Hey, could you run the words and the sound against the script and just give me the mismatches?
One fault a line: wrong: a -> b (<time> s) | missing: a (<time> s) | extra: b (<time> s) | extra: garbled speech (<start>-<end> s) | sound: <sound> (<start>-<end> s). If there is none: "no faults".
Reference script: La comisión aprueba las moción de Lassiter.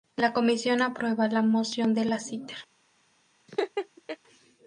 wrong: las -> la (1.3 s)
sound: laugh (3.5-4.2 s)